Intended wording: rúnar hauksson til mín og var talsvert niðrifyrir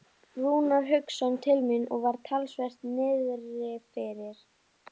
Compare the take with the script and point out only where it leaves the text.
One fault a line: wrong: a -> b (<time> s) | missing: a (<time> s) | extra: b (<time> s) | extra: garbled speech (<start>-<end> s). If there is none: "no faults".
no faults